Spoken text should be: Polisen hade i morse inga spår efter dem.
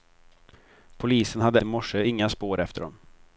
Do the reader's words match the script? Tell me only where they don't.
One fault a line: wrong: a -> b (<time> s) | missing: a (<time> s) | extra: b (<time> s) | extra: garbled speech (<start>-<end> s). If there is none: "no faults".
no faults